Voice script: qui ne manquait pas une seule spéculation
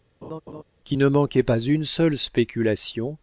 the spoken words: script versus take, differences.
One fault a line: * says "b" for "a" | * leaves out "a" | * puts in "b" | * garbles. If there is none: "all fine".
all fine